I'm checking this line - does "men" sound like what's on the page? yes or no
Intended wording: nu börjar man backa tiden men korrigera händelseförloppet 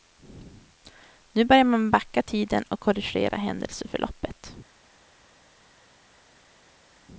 no